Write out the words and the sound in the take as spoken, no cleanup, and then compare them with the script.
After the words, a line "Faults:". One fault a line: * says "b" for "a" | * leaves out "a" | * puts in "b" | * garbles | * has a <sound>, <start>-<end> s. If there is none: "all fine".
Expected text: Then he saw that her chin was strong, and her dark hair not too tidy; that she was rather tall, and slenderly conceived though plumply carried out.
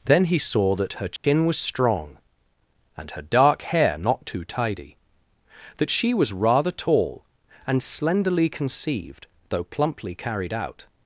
Then he saw that her chin was strong, and her dark hair not too tidy; that she was rather tall, and slenderly conceived though plumply carried out.
Faults:
* has a dropout, 1.2-1.2 s